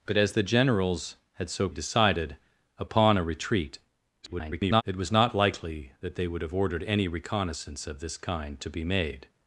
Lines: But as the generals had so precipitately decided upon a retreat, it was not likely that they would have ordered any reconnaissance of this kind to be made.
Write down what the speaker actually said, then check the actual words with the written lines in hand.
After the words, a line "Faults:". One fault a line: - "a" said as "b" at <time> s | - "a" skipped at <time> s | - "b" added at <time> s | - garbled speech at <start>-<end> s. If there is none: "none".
But as the generals had so decided upon a retreat, [garbled] it was not likely that they would have ordered any reconnaissance of this kind to be made.
Faults:
- "precipitately" skipped at 1.7 s
- garbled speech at 4.2-4.8 s